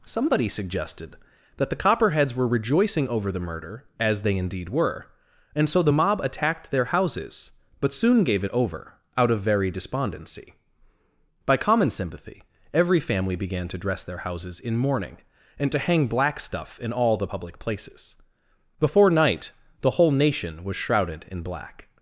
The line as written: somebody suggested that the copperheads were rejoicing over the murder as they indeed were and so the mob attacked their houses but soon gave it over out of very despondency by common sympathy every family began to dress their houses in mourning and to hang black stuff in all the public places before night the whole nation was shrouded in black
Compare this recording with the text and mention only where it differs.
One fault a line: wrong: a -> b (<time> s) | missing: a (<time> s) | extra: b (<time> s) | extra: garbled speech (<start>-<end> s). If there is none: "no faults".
no faults